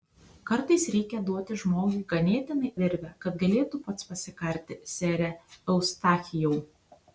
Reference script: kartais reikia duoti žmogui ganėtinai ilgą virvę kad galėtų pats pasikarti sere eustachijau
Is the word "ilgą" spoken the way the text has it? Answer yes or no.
no